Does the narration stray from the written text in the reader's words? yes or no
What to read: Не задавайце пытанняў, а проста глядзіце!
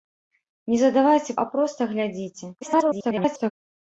yes